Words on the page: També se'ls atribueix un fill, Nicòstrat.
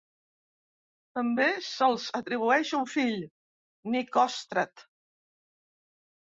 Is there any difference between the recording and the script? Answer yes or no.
no